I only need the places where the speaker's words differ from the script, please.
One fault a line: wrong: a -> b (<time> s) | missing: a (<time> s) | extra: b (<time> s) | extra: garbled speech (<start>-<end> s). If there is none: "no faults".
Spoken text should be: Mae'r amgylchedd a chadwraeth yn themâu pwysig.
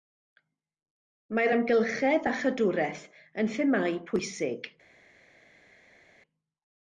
no faults